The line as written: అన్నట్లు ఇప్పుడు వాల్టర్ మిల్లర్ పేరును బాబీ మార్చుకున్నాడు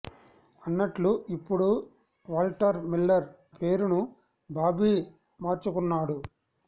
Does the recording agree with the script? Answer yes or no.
yes